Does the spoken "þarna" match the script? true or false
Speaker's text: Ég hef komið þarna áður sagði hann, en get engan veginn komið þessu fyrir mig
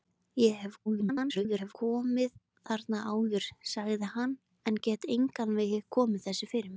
true